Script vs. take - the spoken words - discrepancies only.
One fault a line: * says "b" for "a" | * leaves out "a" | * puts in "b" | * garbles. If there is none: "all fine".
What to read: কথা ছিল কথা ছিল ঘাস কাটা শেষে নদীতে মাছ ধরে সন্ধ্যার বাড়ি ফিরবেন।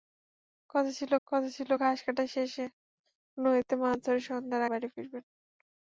all fine